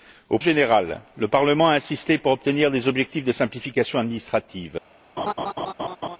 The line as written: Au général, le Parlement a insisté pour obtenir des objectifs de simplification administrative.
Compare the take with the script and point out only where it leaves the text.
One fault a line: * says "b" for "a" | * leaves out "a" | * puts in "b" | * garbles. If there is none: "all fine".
all fine